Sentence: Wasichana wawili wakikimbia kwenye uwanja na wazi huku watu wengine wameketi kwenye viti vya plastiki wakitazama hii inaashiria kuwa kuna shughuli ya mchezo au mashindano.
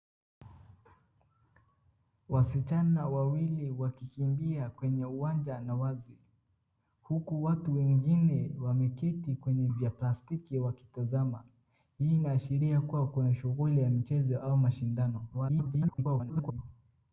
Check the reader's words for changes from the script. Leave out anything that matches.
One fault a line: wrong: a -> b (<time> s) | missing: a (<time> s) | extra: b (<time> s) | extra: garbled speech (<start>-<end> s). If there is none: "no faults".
missing: viti (9.7 s)
extra: garbled speech (15.3-16.6 s)